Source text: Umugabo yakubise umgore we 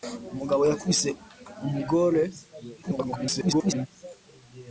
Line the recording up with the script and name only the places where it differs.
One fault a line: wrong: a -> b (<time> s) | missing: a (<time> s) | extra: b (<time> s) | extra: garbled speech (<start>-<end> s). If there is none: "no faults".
extra: garbled speech (2.8-3.9 s)